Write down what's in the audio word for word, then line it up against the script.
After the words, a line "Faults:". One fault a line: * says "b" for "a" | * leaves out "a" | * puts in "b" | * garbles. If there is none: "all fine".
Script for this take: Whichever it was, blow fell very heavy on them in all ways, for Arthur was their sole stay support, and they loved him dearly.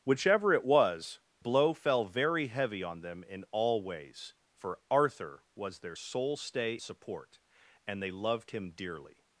Whichever it was, blow fell very heavy on them in all ways, for Arthur was their sole stay support, and they loved him dearly.
Faults:
all fine